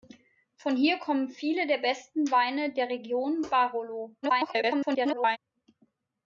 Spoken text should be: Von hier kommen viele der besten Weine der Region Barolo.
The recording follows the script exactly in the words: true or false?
false